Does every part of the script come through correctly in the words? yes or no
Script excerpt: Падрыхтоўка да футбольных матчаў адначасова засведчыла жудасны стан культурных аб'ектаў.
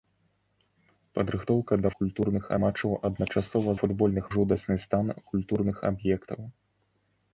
no